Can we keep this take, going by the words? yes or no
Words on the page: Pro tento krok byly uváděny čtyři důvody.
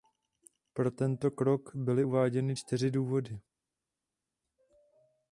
yes